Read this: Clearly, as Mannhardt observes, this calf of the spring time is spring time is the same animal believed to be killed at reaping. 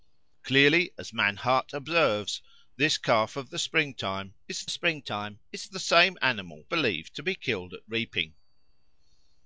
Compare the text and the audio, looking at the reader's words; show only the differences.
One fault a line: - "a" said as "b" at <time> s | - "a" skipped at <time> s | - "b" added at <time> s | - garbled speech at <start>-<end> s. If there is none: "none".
none